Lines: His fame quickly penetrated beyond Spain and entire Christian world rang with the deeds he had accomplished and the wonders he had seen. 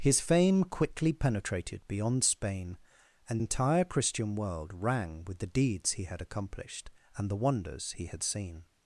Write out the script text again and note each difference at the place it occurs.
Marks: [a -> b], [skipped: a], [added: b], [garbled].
His fame quickly penetrated beyond Spain and entire Christian world rang with the deeds he had accomplished and the wonders he had seen.